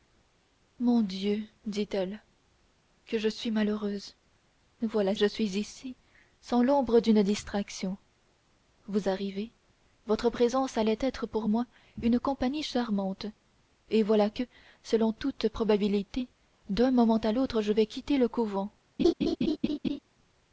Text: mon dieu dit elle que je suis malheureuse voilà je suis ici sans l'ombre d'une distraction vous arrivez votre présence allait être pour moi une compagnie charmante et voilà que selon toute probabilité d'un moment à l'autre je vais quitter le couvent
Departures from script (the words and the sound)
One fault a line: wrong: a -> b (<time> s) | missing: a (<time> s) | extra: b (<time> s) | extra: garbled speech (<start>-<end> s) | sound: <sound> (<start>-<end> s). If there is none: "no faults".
sound: laugh (19.0-20.0 s)